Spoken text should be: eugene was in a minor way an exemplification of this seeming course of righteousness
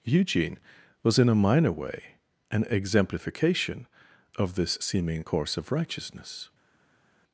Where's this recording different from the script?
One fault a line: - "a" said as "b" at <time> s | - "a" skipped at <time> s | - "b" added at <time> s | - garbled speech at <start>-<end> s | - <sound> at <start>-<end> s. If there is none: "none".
none